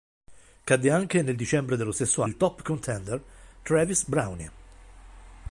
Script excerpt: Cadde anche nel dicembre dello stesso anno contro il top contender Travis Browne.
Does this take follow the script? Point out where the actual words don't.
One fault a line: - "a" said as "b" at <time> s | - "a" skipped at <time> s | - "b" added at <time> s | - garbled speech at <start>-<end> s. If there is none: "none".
- "anno contro" skipped at 2.2 s